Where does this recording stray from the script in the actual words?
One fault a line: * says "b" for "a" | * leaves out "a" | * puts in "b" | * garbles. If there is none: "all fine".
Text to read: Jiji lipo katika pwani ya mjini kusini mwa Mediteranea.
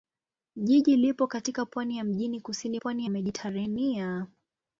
* says "pwani" for "mwa"